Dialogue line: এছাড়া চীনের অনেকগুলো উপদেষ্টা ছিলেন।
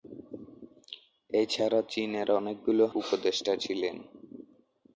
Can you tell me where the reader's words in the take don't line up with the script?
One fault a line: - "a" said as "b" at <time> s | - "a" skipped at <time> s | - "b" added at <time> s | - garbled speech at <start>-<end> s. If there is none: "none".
none